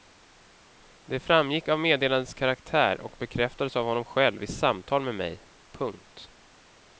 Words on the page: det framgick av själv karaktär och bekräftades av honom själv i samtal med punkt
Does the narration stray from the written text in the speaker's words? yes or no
yes